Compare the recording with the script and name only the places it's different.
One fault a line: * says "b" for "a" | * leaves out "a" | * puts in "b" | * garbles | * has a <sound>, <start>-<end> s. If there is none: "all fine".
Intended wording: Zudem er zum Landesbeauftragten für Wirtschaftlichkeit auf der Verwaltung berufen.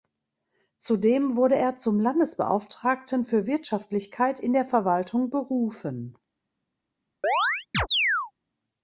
* puts in "wurde"
* says "in" for "auf"
* has a chirp, 7.2-8.3 s